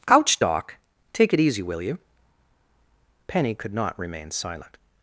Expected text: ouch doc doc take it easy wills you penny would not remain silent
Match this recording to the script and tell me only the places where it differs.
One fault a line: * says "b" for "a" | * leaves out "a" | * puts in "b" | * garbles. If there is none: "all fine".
* leaves out "doc"
* says "will" for "wills"
* says "could" for "would"